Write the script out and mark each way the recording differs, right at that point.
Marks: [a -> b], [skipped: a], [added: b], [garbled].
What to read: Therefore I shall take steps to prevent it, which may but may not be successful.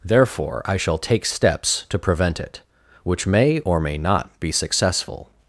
Therefore I shall take steps to prevent it, which may [but -> or] may not be successful.